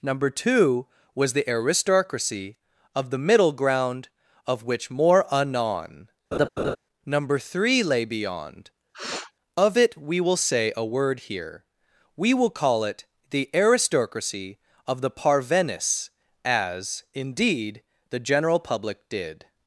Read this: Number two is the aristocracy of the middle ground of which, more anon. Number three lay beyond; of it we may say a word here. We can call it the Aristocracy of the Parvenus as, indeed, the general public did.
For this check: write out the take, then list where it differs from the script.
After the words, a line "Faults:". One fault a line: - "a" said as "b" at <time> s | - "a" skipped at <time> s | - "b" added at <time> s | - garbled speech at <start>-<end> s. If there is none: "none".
Number two was the aristocracy of the middle ground of which, more anon. Number three lay beyond; of it we will say a word here. We will call it the Aristocracy of the Parvenus as, indeed, the general public did.
Faults:
- "is" said as "was" at 1.1 s
- "may" said as "will" at 10.2 s
- "can" said as "will" at 12.3 s